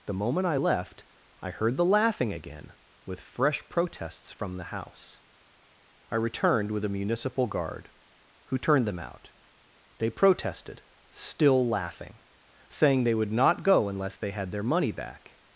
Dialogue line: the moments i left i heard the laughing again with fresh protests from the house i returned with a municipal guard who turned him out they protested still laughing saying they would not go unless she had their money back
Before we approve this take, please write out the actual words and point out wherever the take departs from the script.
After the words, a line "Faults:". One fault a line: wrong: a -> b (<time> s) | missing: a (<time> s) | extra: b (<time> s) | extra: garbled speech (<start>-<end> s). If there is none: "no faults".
the moment i left i heard the laughing again with fresh protests from the house i returned with a municipal guard who turned them out they protested still laughing saying they would not go unless they had their money back
Faults:
wrong: moments -> moment (0.1 s)
wrong: him -> them (8.9 s)
wrong: she -> they (14.2 s)